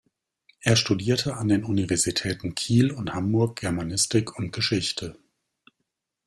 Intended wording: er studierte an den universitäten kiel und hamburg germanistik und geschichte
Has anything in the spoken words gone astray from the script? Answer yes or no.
no